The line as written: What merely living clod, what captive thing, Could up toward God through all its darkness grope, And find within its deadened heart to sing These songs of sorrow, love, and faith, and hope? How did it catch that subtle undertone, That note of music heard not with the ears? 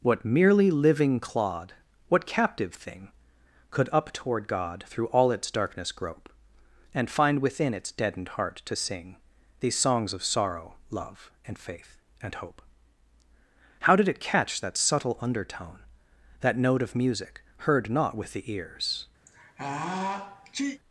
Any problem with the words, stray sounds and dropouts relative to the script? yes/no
yes